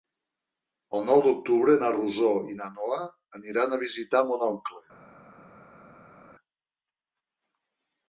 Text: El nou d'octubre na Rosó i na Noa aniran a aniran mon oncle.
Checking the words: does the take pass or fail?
fail